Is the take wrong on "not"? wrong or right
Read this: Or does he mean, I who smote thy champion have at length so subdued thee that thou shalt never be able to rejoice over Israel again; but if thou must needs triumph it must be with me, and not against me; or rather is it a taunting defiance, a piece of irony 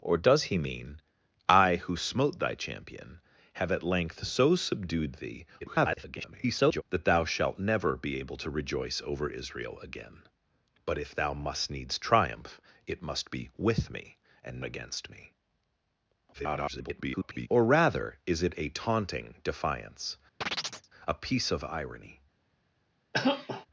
wrong